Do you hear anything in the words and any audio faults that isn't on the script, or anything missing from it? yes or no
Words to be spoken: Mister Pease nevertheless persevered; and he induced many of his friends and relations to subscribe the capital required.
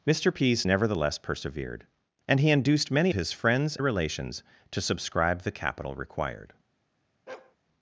yes